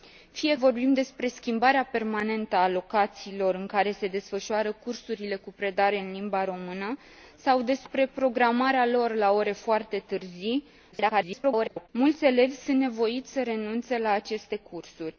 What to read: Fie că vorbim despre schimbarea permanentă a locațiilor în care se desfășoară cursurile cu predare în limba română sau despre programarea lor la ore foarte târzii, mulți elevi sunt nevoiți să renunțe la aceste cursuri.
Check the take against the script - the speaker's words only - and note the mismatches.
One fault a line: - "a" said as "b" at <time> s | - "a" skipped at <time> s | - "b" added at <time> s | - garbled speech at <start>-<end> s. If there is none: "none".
- "că" skipped at 0.6 s
- garbled speech at 10.9-11.9 s